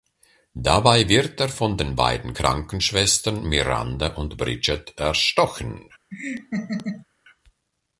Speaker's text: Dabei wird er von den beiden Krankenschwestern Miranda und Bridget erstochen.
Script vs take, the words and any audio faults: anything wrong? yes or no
yes